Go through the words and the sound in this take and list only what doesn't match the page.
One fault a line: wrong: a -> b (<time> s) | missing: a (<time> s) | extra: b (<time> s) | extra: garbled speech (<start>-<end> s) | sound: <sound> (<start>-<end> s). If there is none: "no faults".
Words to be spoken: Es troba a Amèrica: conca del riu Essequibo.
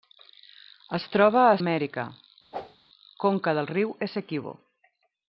sound: whoosh (2.5-2.8 s)